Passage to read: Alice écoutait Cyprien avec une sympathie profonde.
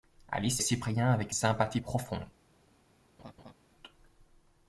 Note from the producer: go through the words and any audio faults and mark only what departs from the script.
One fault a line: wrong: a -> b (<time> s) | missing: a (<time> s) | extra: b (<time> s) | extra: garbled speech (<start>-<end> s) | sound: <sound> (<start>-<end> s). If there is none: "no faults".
missing: écoutait (0.6 s)
missing: une (1.3 s)
sound: laugh (3.2-3.5 s)